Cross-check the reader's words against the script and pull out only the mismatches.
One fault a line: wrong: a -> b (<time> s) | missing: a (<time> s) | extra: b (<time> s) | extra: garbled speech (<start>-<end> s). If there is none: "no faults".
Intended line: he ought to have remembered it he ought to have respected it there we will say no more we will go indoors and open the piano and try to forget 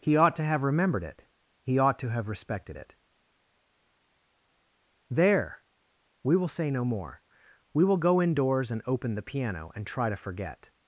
no faults